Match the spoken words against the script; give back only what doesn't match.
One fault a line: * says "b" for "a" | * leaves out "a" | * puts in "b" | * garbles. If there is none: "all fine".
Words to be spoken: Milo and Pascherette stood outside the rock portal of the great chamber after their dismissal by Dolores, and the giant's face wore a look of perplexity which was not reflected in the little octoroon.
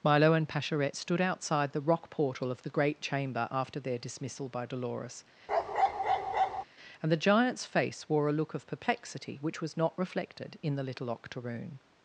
all fine